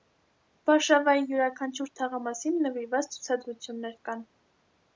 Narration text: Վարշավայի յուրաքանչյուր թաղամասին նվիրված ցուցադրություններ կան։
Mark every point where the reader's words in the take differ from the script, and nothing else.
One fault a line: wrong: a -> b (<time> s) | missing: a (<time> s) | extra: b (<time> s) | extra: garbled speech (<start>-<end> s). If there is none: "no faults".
no faults